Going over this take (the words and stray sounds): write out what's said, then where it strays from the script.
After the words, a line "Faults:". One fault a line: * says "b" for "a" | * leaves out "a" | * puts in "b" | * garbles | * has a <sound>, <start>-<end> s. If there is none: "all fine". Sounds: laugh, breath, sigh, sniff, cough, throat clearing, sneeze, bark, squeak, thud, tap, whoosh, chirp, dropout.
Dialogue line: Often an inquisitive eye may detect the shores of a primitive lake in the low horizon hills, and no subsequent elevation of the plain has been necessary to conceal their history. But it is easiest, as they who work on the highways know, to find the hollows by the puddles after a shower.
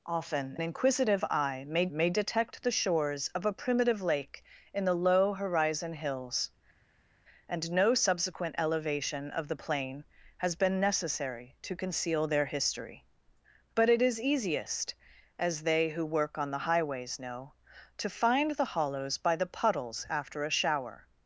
Often inquisitive eye may may detect the shores of a primitive lake in the low horizon hills, and no subsequent elevation of the plain has been necessary to conceal their history. But it is easiest, as they who work on the highways know, to find the hollows by the puddles after a shower.
Faults:
* leaves out "an"
* puts in "may"